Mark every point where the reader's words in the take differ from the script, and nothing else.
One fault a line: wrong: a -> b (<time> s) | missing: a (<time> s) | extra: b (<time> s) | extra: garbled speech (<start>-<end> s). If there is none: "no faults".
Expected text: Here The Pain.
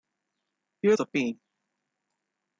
no faults